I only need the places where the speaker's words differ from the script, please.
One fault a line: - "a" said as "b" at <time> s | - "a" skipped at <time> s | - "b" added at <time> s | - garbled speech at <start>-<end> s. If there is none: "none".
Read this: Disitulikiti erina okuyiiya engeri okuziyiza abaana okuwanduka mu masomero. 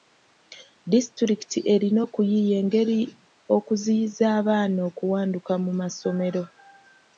none